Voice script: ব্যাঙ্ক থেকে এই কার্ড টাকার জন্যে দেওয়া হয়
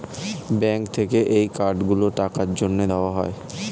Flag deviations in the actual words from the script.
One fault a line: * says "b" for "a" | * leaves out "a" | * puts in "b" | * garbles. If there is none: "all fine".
* puts in "গুলো"